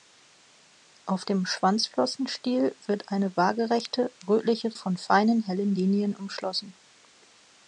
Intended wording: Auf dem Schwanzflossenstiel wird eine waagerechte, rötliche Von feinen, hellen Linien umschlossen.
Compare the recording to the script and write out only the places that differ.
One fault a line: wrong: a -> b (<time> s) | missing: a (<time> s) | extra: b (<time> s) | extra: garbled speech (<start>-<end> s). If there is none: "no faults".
no faults